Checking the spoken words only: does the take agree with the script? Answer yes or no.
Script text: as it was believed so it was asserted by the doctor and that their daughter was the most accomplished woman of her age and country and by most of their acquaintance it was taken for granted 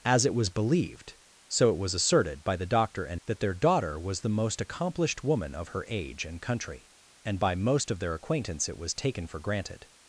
yes